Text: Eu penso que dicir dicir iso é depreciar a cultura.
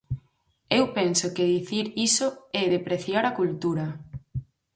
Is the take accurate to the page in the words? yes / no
no